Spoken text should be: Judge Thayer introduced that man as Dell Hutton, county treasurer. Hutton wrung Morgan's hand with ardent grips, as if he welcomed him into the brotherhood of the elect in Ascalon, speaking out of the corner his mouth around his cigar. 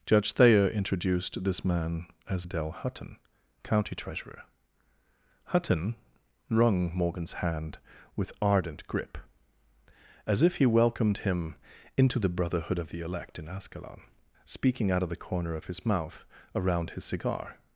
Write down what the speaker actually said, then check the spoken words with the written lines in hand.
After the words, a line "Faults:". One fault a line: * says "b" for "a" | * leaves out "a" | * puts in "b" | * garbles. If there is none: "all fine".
Judge Thayer introduced this man as Dell Hutton, county treasurer. Hutton wrung Morgan's hand with ardent grip, as if he welcomed him into the brotherhood of the elect in Ascalon, speaking out of the corner of his mouth around his cigar.
Faults:
* says "this" for "that"
* says "grip" for "grips"
* puts in "of"